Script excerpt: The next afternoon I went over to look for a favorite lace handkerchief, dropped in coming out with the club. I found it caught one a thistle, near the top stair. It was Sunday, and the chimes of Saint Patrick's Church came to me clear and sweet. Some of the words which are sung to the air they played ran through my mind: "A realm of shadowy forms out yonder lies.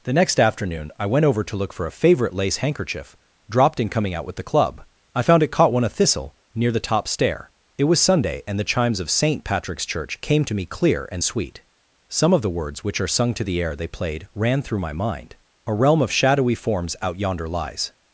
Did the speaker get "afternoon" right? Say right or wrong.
right